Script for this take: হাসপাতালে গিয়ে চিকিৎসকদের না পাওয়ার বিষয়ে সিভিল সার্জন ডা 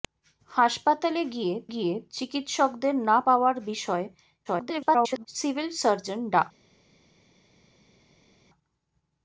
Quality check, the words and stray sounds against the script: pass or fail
fail